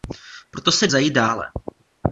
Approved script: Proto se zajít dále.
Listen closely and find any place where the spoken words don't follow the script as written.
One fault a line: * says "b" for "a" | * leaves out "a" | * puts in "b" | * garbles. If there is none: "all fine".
all fine